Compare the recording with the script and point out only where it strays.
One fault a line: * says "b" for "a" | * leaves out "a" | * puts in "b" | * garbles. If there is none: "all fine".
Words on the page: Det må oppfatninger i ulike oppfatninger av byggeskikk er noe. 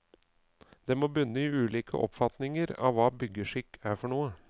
* says "bunne" for "oppfatninger"
* puts in "hva"
* puts in "for"